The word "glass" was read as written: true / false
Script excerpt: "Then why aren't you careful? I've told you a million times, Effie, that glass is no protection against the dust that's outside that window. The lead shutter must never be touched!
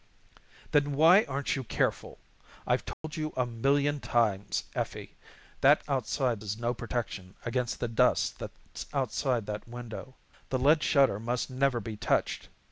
false